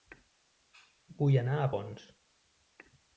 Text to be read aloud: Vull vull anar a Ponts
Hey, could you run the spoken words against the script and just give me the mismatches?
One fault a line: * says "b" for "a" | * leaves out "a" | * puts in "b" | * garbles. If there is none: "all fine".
* leaves out "vull"